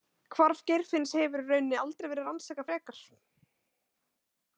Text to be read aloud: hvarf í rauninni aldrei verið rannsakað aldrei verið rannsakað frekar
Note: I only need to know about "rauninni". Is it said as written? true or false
true